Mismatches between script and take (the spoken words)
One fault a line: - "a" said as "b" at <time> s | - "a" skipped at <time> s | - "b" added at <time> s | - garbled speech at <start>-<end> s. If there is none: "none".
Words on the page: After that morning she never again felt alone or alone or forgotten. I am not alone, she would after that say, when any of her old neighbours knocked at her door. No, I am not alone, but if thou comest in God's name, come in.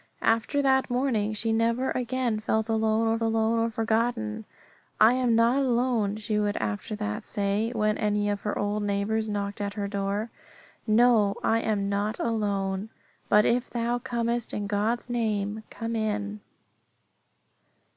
none